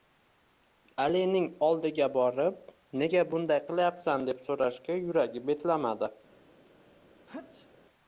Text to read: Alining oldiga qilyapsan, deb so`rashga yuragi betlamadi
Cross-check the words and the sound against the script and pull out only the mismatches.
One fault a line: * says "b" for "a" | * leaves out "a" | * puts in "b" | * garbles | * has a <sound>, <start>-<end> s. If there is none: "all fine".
* puts in "borib nega bunday"
* has a sneeze, 7.3-7.7 s